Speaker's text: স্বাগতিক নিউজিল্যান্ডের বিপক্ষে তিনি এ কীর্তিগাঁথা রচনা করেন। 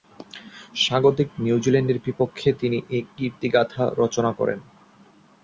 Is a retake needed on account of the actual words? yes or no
no